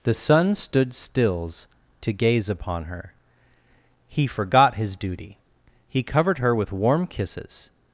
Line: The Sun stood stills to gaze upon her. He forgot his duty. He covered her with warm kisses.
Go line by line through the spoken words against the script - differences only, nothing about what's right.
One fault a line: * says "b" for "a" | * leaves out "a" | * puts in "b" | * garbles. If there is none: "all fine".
all fine